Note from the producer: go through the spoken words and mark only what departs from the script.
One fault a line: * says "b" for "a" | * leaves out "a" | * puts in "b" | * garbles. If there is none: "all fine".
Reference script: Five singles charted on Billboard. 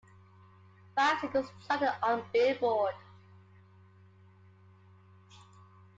all fine